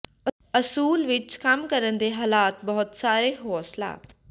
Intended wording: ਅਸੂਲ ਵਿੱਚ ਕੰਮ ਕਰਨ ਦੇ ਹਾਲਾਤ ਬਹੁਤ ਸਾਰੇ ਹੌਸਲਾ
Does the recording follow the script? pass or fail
pass